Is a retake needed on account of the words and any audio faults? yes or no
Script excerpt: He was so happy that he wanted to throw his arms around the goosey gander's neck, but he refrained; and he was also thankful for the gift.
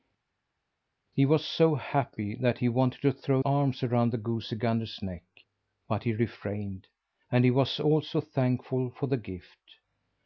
yes